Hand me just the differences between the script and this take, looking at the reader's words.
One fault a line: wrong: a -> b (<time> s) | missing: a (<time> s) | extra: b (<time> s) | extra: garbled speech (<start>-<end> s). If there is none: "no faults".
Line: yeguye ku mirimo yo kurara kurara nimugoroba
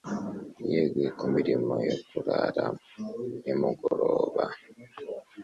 missing: kurara (2.6 s)